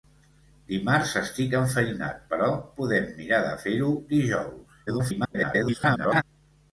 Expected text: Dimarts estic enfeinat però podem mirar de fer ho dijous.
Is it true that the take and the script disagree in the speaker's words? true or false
true